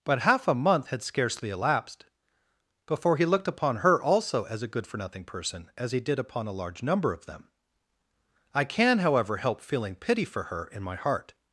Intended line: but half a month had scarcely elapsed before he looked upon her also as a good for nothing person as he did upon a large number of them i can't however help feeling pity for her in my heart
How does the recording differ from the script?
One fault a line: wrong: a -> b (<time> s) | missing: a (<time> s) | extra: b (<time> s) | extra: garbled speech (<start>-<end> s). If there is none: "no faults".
wrong: can't -> can (8.6 s)